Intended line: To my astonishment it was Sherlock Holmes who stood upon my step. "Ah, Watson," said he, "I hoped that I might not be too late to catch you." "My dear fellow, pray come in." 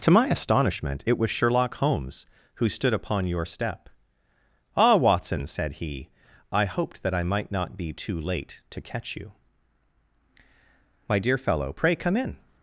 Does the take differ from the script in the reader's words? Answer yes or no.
yes